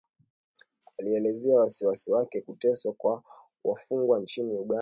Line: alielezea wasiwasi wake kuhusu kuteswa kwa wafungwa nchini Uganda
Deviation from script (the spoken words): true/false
true